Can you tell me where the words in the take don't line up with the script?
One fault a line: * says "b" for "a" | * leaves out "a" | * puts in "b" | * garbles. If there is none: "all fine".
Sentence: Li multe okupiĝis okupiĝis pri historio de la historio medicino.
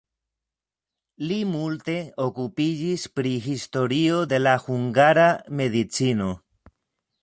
* leaves out "okupiĝis"
* says "hungara" for "historio"